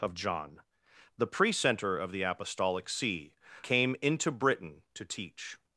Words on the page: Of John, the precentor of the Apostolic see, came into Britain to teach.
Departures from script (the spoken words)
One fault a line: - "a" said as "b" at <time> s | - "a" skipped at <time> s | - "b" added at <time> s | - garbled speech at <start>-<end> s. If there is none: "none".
none